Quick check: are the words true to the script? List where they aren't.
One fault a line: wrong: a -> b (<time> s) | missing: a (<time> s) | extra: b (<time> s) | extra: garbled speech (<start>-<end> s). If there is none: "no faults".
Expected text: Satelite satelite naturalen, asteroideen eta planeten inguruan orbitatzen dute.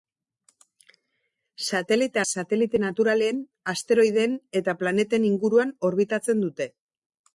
no faults